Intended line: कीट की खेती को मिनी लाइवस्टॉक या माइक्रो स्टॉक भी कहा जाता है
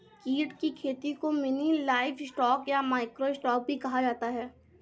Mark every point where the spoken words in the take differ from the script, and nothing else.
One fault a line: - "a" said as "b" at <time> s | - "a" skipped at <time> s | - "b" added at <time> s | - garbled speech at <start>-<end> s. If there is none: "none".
none